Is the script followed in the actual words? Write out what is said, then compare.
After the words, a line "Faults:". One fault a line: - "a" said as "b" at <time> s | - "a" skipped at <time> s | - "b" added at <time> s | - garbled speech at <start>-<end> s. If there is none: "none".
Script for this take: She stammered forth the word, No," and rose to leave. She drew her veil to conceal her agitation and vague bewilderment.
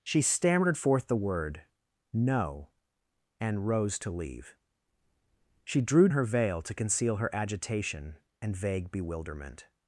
She stammered forth the word, No," and rose to leave. She drew her veil to conceal her agitation and vague bewilderment.
Faults:
none